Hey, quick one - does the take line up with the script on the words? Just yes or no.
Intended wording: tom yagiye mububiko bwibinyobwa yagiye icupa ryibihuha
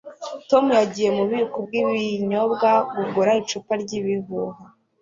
no